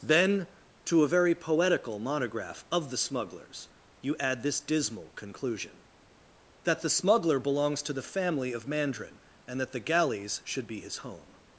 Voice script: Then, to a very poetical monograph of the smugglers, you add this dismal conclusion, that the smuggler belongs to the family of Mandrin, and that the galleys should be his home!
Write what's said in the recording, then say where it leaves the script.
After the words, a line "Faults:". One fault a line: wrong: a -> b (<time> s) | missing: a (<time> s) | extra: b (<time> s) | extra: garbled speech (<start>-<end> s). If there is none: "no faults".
Then, to a very poetical monograph of the smugglers, you add this dismal conclusion, that the smuggler belongs to the family of Mandrin, and that the galleys should be his home!
Faults:
no faults